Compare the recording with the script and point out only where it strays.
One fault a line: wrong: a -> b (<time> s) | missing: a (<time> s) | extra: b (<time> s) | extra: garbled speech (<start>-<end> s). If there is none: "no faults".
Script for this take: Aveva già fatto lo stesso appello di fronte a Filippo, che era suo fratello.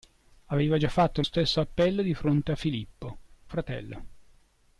missing: lo (1.2 s)
missing: che era suo (3.2 s)